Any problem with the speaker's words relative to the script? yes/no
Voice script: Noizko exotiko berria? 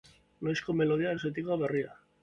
yes